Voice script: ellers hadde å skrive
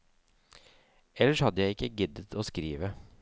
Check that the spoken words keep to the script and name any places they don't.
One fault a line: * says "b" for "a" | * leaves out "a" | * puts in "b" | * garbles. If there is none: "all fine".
* puts in "jeg ikke giddet"